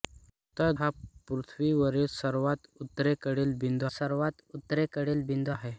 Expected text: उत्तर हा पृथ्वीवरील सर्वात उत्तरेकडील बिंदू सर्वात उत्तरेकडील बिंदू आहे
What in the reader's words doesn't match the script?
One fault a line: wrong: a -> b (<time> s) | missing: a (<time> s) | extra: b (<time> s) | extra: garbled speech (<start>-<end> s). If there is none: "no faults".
no faults